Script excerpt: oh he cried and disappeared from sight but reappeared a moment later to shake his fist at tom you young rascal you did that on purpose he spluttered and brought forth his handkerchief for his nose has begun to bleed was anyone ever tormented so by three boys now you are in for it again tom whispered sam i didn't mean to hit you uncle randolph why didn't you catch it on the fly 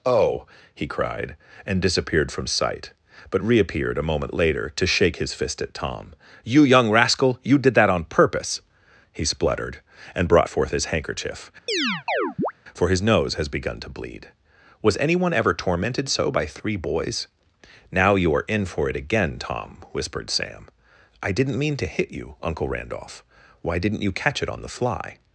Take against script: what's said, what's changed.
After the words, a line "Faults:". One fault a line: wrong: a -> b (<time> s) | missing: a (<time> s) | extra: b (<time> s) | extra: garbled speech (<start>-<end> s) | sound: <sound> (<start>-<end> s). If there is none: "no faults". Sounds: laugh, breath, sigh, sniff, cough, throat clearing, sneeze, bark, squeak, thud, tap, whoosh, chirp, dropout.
oh he cried and disappeared from sight but reappeared a moment later to shake his fist at tom you young rascal you did that on purpose he spluttered and brought forth his handkerchief for his nose has begun to bleed was anyone ever tormented so by three boys now you are in for it again tom whispered sam i didn't mean to hit you uncle randolph why didn't you catch it on the fly
Faults:
sound: chirp (11.7-12.5 s)